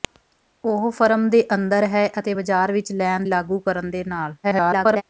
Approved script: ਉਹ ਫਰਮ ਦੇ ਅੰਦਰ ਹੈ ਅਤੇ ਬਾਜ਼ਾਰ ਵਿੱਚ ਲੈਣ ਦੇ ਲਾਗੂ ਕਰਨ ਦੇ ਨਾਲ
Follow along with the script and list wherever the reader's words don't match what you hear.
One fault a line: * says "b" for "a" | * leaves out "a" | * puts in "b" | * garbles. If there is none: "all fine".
* leaves out "ਦੇ"
* garbles